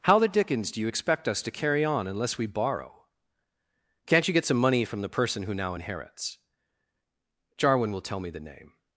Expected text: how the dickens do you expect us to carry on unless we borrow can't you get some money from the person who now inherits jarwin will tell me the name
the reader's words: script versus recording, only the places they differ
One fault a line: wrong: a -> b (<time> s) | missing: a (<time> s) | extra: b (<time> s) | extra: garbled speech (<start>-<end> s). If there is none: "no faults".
no faults